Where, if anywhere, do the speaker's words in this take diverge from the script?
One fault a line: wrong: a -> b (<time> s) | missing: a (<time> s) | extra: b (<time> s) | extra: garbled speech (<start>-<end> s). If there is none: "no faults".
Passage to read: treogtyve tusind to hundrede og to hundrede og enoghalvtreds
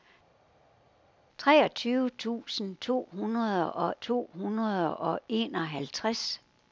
no faults